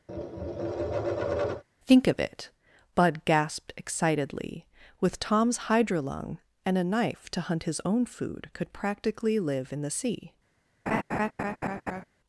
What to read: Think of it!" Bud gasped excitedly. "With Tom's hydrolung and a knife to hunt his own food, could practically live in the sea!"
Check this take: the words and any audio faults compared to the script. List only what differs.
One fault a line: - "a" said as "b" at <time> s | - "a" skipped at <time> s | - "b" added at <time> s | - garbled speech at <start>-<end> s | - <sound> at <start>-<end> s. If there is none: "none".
- tap at 0.1-1.6 s
- laugh at 10.9-12.0 s